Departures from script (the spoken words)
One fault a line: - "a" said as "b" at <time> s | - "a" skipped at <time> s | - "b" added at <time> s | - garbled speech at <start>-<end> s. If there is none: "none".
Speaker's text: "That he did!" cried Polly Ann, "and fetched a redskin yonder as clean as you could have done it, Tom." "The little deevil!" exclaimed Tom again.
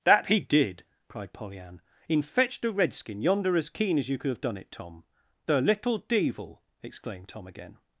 - "and" said as "in" at 2.1 s
- "clean" said as "keen" at 3.7 s